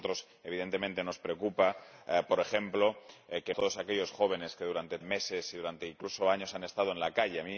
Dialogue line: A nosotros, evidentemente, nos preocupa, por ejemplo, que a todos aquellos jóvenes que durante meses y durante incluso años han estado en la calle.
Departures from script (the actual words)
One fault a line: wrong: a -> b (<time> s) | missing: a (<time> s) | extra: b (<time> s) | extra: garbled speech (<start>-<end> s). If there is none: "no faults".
no faults